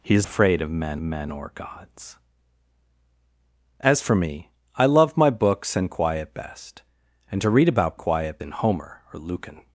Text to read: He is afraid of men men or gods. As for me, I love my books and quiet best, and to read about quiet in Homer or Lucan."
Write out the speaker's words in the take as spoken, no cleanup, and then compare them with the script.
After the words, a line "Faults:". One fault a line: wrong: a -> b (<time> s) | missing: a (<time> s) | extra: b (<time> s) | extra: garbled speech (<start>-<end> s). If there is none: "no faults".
He is afraid of men men or gods. As for me, I love my books and quiet best, and to read about quiet in Homer or Lucan."
Faults:
no faults